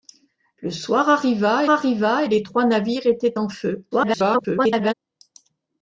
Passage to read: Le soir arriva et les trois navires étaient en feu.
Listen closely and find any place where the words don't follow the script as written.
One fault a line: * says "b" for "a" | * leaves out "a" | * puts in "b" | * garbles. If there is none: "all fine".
* puts in "arriva"
* garbles